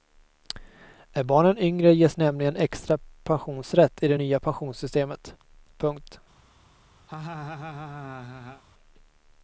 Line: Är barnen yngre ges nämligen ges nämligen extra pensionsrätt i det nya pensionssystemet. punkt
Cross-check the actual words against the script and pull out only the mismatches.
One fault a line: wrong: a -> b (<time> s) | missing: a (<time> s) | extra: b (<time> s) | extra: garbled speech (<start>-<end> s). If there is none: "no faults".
missing: ges nämligen (2.5 s)